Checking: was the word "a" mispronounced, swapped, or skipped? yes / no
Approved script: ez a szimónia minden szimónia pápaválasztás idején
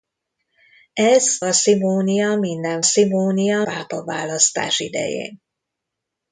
no